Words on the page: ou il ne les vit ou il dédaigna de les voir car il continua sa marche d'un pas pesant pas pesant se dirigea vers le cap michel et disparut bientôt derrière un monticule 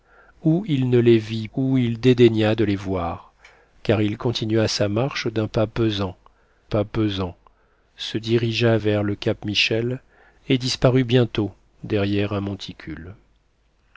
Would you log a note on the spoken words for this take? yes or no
no